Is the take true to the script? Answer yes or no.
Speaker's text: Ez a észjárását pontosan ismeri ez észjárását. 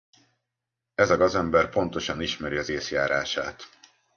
no